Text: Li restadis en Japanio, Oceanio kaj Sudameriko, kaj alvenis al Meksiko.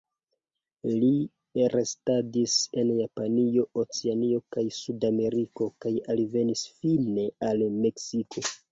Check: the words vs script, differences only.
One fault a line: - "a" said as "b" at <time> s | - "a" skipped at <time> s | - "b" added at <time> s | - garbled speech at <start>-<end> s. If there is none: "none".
- "fine" added at 6.8 s